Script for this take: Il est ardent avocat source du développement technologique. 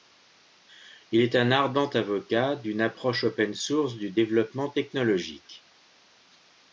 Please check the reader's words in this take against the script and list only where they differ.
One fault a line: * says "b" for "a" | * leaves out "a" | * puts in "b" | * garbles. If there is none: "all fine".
* puts in "un"
* puts in "d'une approche open"